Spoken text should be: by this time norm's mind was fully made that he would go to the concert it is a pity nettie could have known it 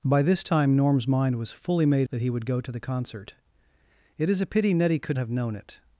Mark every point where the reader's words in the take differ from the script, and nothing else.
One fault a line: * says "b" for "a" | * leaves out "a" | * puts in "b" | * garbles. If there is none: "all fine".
all fine